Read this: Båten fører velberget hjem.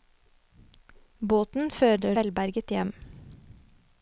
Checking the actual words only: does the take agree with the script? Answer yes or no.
yes